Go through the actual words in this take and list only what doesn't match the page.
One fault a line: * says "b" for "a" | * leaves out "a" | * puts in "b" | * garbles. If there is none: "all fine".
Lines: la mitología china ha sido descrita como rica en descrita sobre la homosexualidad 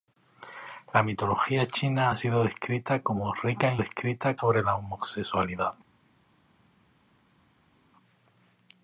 all fine